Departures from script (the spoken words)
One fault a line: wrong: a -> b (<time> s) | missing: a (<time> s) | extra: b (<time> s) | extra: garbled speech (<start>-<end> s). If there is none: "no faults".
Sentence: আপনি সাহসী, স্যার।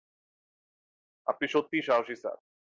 extra: সত্যিই (1.5 s)